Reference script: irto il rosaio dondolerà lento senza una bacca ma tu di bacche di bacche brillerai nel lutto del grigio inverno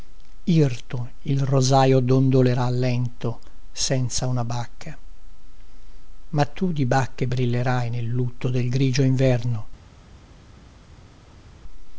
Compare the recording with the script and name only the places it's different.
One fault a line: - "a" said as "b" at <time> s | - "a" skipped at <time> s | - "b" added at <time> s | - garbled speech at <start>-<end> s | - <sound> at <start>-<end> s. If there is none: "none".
- "di bacche" skipped at 7.3 s